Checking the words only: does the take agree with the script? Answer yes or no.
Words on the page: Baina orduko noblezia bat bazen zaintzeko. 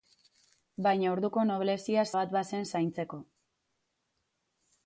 yes